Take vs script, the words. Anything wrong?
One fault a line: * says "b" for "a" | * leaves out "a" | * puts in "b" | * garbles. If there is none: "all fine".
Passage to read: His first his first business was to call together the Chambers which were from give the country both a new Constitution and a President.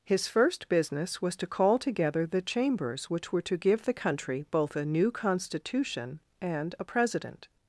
* leaves out "his first"
* says "to" for "from"